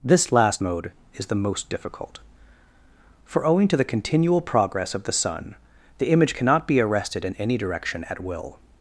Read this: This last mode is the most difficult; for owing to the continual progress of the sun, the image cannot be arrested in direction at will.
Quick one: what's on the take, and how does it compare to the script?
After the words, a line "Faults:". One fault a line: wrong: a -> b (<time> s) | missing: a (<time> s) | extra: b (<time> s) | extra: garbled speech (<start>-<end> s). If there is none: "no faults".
This last mode is the most difficult; for owing to the continual progress of the sun, the image cannot be arrested in any direction at will.
Faults:
extra: any (7.4 s)